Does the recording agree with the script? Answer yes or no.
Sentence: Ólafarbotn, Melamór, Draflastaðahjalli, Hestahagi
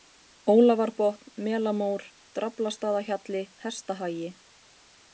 yes